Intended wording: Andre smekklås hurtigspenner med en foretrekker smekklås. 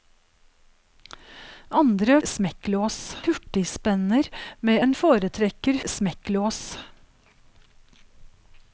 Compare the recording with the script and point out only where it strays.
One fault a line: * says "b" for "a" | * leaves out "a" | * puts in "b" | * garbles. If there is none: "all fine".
all fine